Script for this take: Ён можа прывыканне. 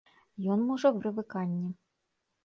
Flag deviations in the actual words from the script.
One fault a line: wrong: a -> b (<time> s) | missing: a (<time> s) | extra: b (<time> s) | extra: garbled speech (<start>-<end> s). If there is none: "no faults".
no faults